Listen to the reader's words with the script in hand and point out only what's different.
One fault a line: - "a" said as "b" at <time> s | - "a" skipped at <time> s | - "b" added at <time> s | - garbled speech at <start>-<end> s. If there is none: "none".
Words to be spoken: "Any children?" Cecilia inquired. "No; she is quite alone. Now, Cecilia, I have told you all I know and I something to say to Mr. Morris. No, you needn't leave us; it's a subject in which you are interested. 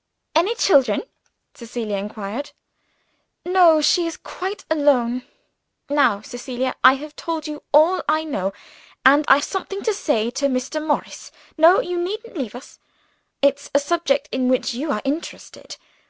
none